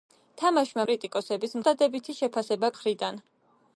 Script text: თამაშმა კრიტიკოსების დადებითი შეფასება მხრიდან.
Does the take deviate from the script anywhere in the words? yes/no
no